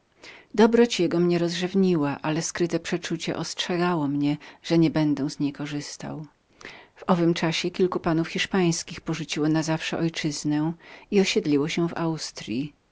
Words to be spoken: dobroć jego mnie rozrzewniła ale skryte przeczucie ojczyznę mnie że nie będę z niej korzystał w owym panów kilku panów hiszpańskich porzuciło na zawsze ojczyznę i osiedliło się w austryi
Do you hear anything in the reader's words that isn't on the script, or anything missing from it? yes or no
yes